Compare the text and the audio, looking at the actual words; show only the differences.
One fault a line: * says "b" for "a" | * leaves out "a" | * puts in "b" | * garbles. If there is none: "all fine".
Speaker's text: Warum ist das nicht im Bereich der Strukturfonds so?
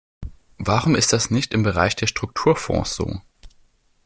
all fine